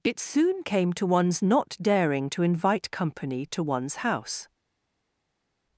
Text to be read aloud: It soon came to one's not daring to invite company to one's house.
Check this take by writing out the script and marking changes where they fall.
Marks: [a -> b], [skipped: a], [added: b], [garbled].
It soon came to one's not daring to invite company to one's house.